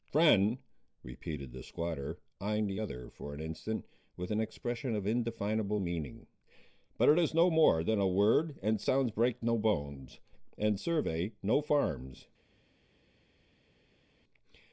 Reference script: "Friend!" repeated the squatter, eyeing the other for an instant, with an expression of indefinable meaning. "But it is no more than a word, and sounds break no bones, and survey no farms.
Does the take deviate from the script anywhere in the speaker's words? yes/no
no